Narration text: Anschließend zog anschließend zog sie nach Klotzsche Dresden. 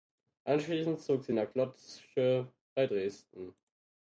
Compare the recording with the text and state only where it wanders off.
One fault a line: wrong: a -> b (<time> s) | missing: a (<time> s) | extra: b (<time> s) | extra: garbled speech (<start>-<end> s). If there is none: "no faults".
missing: anschließend zog (1.2 s)
extra: bei (2.7 s)